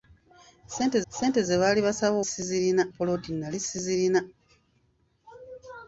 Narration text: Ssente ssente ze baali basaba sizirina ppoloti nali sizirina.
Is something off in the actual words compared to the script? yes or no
no